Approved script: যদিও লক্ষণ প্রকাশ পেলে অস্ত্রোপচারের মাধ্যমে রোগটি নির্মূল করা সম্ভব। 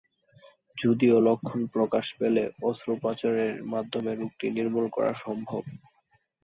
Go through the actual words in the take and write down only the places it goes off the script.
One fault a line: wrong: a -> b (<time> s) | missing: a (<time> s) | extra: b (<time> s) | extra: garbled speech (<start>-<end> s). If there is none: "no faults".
no faults